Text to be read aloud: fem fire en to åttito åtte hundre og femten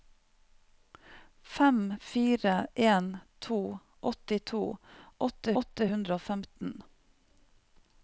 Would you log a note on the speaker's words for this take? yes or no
yes